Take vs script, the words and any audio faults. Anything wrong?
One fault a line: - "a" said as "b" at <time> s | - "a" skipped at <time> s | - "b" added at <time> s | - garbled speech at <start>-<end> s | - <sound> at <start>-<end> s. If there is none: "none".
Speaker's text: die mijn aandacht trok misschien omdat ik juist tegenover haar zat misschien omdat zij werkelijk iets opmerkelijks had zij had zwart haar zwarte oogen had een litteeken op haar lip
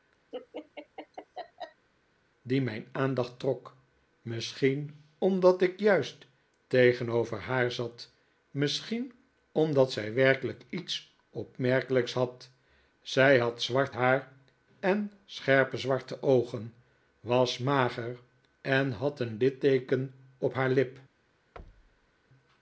- laugh at 0.3-1.9 s
- "en scherpe" added at 14.8 s
- "was mager en" added at 17.2 s
- thud at 21.6-22.1 s